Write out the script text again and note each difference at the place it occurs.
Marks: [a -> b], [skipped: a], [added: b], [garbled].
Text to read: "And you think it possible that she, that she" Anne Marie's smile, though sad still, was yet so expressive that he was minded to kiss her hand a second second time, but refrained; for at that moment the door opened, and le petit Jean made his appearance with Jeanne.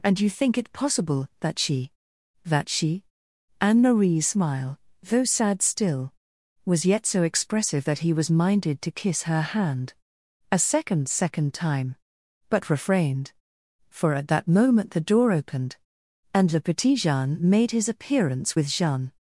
"And you think it possible that she, that she" Anne Marie's smile, though sad still, was yet so expressive that he was minded to kiss her hand a second second time, but refrained; for at that moment the door opened, and le petit Jean made his appearance with Jeanne.